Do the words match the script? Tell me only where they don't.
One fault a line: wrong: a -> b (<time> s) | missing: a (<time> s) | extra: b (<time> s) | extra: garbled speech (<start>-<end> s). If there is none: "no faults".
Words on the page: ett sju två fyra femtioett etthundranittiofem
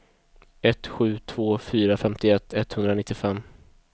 no faults